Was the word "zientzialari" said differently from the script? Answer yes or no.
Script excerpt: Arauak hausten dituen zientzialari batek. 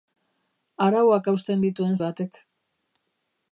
yes